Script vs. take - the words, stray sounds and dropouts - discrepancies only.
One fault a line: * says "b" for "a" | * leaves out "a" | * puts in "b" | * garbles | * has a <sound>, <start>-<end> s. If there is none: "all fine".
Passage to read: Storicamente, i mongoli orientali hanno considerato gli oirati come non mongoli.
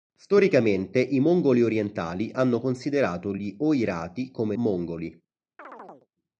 * leaves out "non"
* has a chirp, 5.6-6.1 s